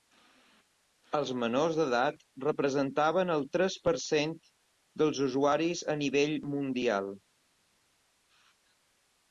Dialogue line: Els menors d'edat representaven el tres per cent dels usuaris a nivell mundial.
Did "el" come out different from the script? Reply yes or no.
no